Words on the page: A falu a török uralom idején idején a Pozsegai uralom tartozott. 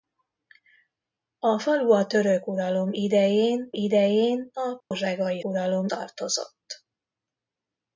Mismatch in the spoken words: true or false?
false